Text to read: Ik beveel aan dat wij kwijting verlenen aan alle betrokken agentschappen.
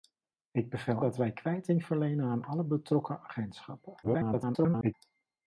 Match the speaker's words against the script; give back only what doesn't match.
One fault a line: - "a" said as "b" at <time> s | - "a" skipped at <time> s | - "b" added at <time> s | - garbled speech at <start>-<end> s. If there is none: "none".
- "aan" skipped at 1.0 s
- garbled speech at 4.0-4.9 s